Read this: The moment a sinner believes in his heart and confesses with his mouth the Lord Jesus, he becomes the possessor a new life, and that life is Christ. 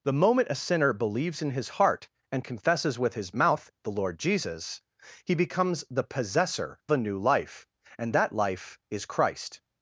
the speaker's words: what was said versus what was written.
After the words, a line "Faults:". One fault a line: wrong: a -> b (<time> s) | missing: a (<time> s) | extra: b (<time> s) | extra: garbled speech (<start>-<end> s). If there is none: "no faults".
The moment a sinner believes in his heart and confesses with his mouth the Lord Jesus, he becomes the possessor a new life, and that life is Christ.
Faults:
no faults